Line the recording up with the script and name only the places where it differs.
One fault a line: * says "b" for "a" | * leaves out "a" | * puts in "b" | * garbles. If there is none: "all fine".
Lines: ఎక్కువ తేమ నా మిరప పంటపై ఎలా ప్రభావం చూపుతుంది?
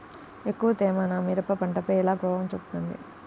all fine